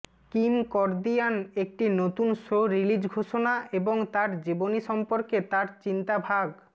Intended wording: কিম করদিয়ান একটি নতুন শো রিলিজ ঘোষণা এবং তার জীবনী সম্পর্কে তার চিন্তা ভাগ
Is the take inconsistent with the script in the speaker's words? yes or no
no